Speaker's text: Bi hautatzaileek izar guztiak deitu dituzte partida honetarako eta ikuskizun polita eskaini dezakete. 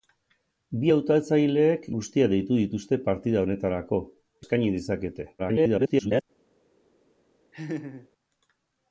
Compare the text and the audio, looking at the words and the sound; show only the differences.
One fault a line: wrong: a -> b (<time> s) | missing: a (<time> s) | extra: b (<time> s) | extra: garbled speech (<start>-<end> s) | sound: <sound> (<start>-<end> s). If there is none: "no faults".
missing: izar (1.9 s)
missing: eta ikuskizun polita (4.0 s)
extra: garbled speech (5.4-6.2 s)
sound: laugh (7.5-8.1 s)